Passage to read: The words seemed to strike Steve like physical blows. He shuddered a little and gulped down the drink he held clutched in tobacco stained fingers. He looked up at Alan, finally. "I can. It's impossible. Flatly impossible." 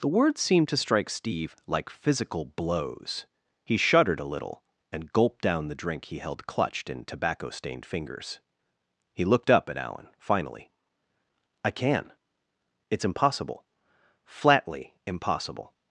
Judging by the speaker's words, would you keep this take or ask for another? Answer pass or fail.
pass